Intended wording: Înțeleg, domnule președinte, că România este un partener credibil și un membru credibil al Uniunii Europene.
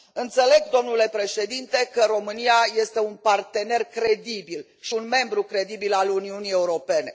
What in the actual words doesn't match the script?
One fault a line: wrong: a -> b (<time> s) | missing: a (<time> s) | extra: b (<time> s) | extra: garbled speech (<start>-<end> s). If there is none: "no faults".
no faults